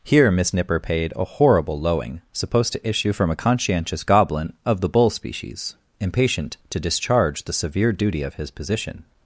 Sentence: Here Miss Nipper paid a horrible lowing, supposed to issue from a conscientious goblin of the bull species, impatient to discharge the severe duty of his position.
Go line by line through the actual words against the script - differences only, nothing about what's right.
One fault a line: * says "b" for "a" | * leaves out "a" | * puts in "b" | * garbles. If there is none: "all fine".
all fine